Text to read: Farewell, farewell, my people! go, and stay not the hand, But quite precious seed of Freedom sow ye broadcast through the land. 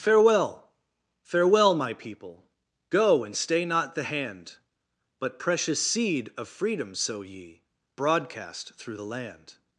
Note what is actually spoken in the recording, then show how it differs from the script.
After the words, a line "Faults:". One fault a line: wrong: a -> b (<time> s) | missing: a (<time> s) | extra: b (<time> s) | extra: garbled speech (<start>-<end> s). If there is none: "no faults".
Farewell, farewell, my people! go, and stay not the hand, But precious seed of Freedom sow ye broadcast through the land.
Faults:
missing: quite (5.4 s)